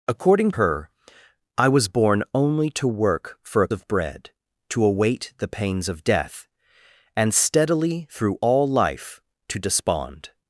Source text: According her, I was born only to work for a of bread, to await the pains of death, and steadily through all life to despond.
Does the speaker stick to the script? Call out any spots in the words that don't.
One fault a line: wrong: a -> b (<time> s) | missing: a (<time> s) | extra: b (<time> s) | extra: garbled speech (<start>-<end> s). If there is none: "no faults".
no faults